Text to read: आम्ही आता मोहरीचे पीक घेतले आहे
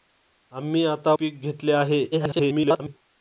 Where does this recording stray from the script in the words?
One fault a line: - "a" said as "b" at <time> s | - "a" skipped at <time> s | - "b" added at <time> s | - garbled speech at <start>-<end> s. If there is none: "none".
- "मोहरीचे" skipped at 1.1 s
- garbled speech at 2.1-3.0 s